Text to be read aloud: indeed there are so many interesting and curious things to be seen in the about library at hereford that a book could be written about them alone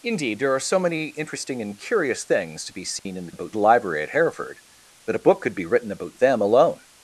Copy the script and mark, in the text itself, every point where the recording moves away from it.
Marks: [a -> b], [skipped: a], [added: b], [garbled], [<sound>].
indeed there are so many interesting and curious things to be seen [dropout] in the about library at hereford that a book could be written about them alone